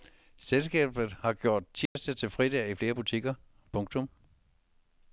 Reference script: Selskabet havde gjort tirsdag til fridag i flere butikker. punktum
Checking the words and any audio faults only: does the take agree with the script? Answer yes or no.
no